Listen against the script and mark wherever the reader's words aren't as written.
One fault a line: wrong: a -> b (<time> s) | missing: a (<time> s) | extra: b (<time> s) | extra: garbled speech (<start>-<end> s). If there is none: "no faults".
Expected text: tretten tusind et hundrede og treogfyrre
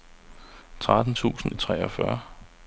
missing: et hundrede (1.5 s)